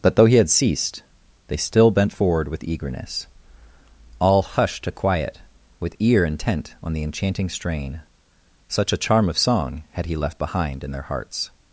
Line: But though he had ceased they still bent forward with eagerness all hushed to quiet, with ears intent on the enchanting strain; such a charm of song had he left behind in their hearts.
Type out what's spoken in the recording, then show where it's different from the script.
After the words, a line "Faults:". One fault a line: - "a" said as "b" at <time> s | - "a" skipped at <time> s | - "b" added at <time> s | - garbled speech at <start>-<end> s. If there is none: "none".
But though he had ceased they still bent forward with eagerness all hushed to quiet, with ear intent on the enchanting strain; such a charm of song had he left behind in their hearts.
Faults:
- "ears" said as "ear" at 6.0 s